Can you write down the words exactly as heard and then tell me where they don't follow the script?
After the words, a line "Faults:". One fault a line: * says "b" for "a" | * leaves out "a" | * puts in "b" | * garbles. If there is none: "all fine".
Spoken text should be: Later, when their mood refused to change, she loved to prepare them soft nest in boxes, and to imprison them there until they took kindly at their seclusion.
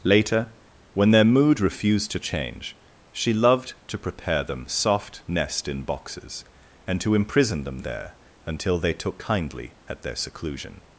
Later, when their mood refused to change, she loved to prepare them soft nest in boxes, and to imprison them there until they took kindly at their seclusion.
Faults:
all fine